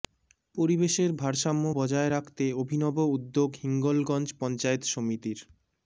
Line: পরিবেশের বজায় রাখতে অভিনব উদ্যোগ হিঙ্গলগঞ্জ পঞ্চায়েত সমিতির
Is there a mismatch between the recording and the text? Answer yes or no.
yes